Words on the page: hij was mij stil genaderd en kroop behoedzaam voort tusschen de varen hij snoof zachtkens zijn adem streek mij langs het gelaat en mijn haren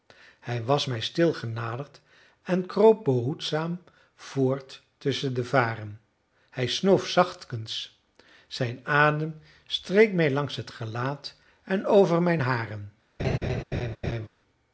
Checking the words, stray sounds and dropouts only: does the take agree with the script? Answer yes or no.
no